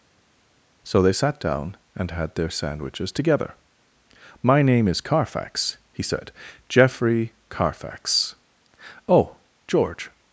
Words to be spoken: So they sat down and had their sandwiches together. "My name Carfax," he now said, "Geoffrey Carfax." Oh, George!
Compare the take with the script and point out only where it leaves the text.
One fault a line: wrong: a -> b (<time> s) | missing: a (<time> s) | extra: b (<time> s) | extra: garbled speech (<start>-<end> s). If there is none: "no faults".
extra: is (4.9 s)
missing: now (6.0 s)